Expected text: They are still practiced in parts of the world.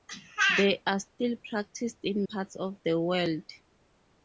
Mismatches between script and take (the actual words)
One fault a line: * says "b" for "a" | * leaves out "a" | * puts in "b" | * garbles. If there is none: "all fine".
all fine